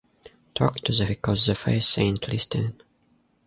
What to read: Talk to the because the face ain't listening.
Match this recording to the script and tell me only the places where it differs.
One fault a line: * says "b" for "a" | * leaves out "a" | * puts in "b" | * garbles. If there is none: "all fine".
all fine